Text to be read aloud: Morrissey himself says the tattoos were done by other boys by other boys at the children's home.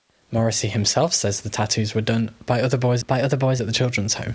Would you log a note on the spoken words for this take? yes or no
no